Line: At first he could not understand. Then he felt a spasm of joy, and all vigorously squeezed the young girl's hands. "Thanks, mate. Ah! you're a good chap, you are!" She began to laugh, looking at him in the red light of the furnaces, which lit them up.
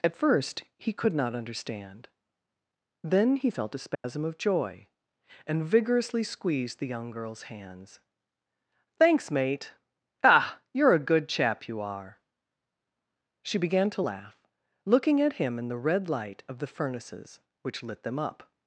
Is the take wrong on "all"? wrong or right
wrong